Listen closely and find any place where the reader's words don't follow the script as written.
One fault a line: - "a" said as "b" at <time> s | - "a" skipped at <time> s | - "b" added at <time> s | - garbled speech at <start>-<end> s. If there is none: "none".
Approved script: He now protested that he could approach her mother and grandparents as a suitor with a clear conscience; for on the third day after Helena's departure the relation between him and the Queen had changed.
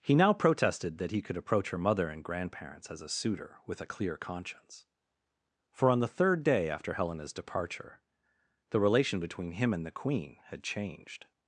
none